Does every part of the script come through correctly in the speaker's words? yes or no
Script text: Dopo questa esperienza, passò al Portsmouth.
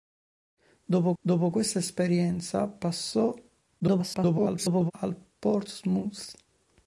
no